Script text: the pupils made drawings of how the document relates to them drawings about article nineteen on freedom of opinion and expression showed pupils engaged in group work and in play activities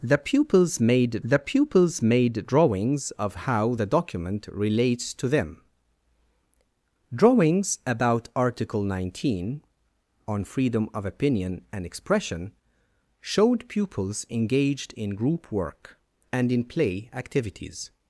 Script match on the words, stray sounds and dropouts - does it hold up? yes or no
no